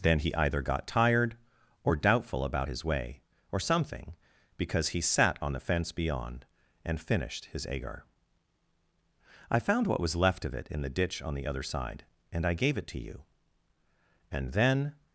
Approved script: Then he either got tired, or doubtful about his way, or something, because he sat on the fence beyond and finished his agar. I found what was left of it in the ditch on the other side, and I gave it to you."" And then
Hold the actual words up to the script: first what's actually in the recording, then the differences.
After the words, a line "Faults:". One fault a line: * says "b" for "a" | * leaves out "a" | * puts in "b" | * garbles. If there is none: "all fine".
Then he either got tired, or doubtful about his way, or something, because he sat on the fence beyond and finished his agar. I found what was left of it in the ditch on the other side, and I gave it to you."" And then
Faults:
all fine